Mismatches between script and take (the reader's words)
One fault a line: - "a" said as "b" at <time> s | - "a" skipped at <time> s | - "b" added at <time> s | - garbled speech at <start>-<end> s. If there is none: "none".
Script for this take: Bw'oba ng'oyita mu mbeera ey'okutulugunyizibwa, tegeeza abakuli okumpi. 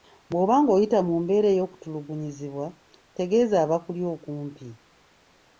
none